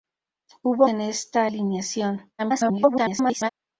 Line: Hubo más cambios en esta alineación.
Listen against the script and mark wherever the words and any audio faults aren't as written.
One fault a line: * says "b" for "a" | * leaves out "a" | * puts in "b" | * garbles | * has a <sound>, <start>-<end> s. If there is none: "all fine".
* leaves out "más cambios"
* garbles